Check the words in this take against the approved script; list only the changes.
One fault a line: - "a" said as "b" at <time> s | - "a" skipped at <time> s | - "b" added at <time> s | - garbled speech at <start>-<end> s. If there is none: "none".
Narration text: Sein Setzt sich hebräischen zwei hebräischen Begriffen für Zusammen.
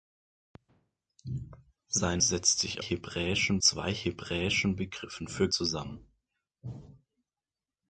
none